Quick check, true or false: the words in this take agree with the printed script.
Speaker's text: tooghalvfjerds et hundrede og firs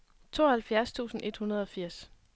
false